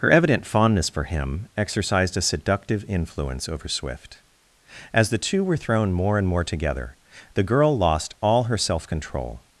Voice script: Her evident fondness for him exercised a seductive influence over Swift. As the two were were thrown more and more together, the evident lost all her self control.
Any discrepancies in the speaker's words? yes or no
yes